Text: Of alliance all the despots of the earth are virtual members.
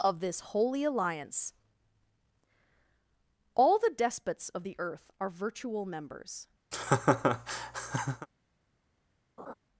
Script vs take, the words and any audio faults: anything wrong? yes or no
yes